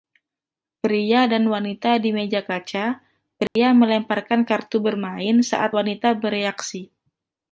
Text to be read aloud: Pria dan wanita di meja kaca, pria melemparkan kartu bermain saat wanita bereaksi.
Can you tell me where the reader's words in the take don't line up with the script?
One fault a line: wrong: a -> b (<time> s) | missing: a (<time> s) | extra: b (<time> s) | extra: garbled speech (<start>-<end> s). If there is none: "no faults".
no faults